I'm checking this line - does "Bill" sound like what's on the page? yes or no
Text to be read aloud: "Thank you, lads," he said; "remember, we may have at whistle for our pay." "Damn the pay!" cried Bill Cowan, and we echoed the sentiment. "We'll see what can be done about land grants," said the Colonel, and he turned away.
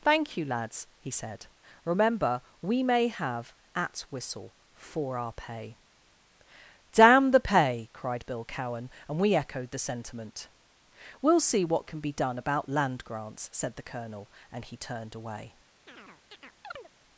yes